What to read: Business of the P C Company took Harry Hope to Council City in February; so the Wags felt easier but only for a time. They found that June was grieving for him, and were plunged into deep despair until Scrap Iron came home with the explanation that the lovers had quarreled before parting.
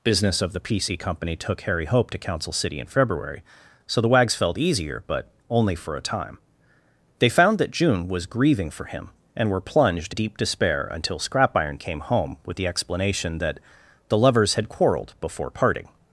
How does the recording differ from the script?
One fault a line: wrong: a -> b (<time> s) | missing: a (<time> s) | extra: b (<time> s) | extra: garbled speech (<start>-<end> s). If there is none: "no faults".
missing: into (10.2 s)